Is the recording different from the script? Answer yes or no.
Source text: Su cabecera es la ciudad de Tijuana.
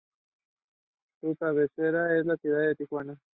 no